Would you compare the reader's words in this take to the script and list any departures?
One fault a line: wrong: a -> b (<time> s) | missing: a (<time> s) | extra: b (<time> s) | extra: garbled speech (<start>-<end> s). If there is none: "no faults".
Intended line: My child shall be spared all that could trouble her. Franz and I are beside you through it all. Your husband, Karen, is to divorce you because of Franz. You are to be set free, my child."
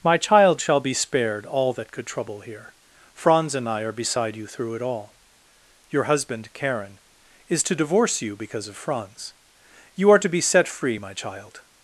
wrong: her -> here (2.4 s)